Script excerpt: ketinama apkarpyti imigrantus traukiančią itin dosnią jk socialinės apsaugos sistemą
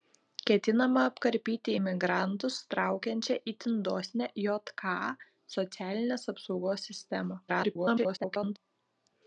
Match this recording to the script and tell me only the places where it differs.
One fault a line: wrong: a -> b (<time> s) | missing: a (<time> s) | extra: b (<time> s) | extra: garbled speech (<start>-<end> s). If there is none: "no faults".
extra: garbled speech (7.5-8.6 s)